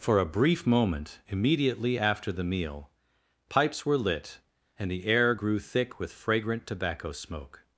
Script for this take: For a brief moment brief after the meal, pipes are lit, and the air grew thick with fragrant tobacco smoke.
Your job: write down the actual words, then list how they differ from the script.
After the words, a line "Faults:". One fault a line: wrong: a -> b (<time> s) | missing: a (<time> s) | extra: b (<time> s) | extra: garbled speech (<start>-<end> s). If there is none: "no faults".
For a brief moment immediately after the meal, pipes were lit, and the air grew thick with fragrant tobacco smoke.
Faults:
wrong: brief -> immediately (1.3 s)
wrong: are -> were (3.9 s)